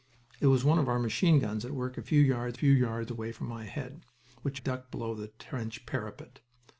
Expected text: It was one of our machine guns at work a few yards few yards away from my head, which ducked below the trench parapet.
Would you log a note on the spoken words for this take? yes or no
no